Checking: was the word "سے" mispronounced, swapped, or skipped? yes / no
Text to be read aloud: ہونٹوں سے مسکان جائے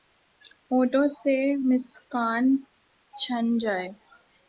no